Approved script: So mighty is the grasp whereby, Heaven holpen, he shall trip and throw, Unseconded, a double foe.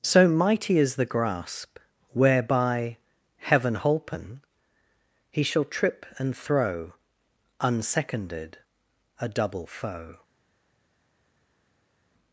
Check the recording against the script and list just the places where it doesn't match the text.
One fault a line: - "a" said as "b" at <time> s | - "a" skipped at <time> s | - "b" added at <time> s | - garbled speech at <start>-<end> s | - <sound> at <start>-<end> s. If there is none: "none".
none